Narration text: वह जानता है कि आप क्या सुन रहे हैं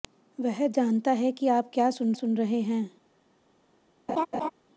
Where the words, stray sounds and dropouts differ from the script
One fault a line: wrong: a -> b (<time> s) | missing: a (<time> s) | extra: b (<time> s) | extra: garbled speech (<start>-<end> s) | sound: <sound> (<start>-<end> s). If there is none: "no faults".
extra: सुन (2.1 s)
sound: laugh (4.1-4.5 s)